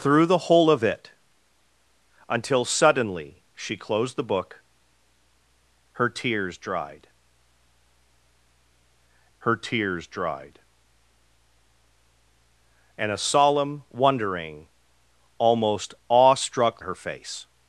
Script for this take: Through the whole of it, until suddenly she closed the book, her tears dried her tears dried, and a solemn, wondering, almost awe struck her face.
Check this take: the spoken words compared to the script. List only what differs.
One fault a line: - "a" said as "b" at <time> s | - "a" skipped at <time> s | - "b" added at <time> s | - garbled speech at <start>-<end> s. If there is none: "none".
none